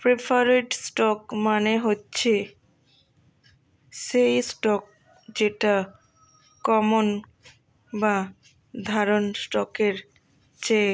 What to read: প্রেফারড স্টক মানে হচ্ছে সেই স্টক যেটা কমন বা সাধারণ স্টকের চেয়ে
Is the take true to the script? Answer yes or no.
yes